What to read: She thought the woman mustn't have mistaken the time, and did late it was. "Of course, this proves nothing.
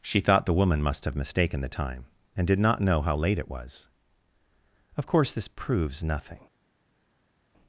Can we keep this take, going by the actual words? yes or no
no